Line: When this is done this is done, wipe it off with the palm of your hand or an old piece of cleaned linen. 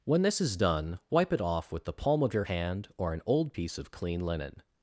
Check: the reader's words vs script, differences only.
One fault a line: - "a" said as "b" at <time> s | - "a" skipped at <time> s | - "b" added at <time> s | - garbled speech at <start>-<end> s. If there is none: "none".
- "this is done" skipped at 1.0 s
- "cleaned" said as "clean" at 3.9 s